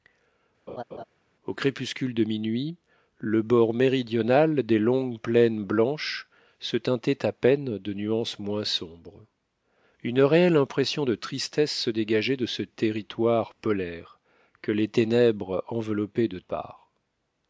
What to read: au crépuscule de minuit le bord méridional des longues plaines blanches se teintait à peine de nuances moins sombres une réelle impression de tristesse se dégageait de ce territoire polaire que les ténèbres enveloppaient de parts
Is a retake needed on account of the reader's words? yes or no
no